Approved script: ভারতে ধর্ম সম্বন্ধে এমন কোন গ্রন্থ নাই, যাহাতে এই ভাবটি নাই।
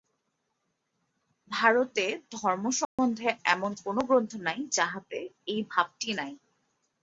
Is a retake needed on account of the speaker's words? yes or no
no